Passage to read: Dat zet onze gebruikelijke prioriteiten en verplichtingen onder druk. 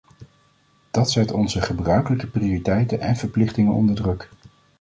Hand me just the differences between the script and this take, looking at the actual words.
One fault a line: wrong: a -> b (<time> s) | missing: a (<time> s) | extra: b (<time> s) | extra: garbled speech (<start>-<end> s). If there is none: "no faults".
no faults